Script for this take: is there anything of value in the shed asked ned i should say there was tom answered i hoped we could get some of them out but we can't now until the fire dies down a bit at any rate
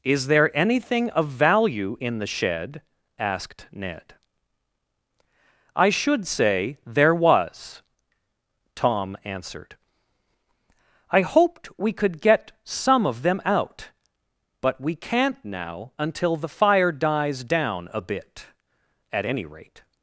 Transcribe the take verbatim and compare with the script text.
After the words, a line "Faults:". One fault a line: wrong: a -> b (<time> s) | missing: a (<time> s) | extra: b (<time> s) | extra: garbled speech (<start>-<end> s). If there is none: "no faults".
is there anything of value in the shed asked ned i should say there was tom answered i hoped we could get some of them out but we can't now until the fire dies down a bit at any rate
Faults:
no faults